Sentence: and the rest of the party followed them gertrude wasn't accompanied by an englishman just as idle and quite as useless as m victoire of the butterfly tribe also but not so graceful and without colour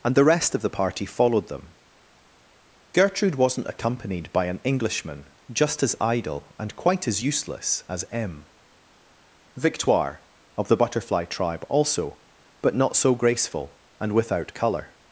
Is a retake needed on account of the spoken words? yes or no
no